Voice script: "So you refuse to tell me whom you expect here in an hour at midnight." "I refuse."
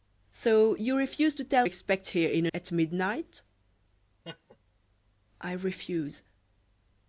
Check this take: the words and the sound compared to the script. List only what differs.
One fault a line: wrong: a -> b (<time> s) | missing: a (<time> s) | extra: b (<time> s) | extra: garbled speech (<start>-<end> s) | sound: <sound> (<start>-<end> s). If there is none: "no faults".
missing: me whom you (1.7 s)
missing: an hour (2.5 s)
sound: laugh (4.2-4.6 s)